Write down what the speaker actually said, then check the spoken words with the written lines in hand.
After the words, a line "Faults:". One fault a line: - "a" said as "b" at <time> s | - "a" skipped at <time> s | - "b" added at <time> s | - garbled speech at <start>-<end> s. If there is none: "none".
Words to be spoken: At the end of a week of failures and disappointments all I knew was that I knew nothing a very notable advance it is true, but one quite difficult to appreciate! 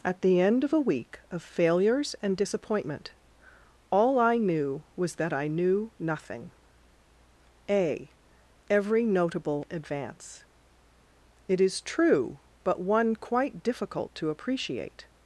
At the end of a week of failures and disappointment all I knew was that I knew nothing a every notable advance it is true, but one quite difficult to appreciate!
Faults:
- "disappointments" said as "disappointment" at 2.4 s
- "very" said as "every" at 8.7 s